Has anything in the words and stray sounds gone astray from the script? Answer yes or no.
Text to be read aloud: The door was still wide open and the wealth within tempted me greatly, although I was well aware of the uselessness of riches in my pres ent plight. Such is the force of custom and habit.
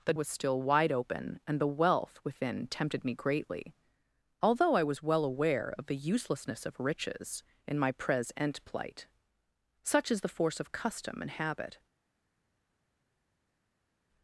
yes